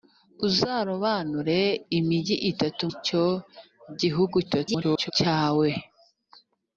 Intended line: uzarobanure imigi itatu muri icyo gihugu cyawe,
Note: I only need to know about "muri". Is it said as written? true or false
false